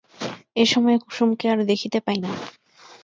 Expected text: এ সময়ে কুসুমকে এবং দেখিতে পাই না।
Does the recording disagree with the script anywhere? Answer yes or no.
yes